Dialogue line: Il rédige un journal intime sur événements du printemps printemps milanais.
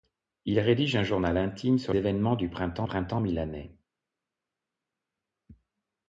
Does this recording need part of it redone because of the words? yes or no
no